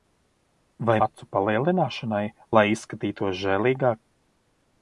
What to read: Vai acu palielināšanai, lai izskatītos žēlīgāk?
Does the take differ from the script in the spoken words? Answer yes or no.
no